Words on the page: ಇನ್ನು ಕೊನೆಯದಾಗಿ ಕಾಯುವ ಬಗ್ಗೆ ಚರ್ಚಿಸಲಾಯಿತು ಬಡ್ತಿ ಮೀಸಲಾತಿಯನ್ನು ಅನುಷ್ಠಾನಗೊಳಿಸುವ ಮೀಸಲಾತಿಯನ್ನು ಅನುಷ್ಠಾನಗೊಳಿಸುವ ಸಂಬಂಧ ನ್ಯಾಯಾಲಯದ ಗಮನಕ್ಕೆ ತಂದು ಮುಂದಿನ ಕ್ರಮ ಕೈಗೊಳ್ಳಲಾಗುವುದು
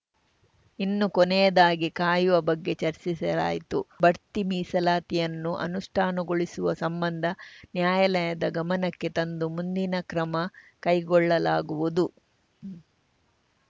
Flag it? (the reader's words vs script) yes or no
yes